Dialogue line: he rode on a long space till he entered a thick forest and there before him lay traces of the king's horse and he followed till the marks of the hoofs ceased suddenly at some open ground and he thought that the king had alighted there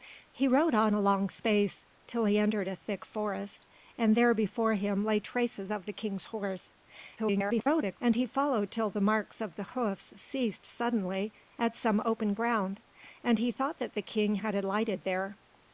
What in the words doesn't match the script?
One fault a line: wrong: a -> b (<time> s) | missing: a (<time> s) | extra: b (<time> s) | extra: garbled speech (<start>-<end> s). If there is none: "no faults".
extra: garbled speech (7.2-8.0 s)